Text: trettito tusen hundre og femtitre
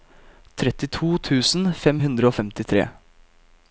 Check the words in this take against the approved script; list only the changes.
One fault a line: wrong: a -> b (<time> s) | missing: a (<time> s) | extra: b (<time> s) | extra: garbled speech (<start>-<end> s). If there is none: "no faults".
extra: fem (1.8 s)